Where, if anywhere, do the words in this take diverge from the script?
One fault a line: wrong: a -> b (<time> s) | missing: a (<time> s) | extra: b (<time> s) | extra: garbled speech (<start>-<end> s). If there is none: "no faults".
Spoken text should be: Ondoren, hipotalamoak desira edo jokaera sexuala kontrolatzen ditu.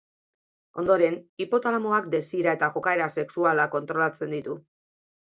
wrong: edo -> eta (2.6 s)